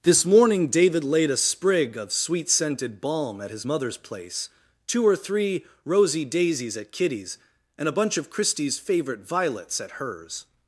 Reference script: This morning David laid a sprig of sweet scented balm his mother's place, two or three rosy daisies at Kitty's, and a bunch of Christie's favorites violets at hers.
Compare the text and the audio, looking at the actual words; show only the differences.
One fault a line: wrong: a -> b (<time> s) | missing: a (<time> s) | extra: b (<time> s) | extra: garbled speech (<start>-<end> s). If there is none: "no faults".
extra: at (3.4 s)
wrong: favorites -> favorite (8.8 s)